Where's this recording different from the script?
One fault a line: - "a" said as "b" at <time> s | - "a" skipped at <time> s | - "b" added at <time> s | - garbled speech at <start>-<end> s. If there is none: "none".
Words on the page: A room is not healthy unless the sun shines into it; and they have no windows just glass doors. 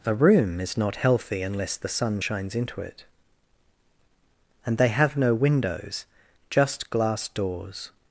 none